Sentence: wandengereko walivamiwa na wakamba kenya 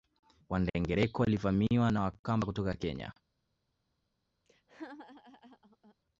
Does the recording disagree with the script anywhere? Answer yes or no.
yes